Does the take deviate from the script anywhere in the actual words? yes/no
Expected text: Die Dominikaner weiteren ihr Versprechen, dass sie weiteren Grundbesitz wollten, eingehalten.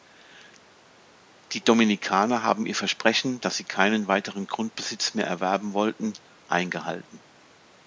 yes